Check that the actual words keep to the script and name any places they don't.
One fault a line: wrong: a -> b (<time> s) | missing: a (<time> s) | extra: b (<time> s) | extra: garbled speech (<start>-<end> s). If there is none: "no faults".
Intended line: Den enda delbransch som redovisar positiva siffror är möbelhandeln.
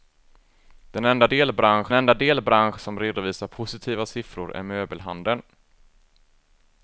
extra: enda delbransch (1.9 s)